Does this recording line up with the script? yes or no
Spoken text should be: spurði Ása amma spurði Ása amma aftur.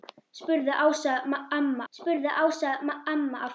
yes